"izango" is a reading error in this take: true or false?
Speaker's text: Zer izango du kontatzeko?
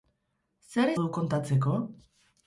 true